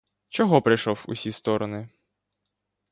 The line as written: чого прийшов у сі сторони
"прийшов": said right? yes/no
yes